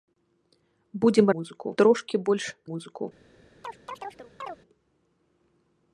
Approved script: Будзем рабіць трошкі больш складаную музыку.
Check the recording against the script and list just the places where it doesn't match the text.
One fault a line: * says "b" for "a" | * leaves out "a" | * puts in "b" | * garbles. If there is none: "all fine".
* says "музыку" for "рабіць"
* leaves out "складаную"